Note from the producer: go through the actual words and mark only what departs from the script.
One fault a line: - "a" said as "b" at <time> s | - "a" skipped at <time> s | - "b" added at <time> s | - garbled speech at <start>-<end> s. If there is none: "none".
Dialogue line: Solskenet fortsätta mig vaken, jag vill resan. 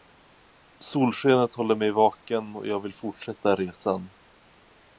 - "fortsätta" said as "håller" at 1.6 s
- "och" added at 2.5 s
- "fortsätta" added at 2.9 s